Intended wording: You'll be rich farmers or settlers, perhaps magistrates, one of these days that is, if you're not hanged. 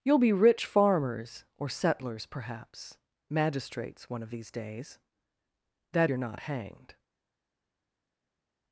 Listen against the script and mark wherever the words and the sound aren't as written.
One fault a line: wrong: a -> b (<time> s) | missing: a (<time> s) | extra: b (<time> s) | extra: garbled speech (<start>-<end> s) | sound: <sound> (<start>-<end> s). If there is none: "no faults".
missing: is if (6.1 s)